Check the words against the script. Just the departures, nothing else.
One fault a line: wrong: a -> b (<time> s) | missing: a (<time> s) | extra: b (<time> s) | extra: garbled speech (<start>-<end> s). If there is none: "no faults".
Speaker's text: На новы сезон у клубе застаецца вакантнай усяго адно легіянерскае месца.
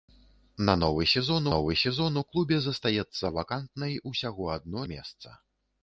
extra: новы сезон (1.5 s)
missing: легіянерскае (4.8 s)